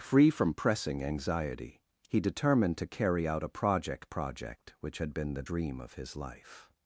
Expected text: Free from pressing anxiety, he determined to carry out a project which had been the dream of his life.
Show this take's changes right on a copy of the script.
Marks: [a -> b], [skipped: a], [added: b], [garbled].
Free from pressing anxiety, he determined to carry out a project [added: project] which had been the dream of his life.